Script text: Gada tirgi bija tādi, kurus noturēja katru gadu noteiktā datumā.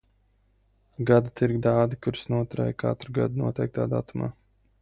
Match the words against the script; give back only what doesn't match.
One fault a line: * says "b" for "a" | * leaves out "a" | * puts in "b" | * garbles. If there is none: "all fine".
* leaves out "bija"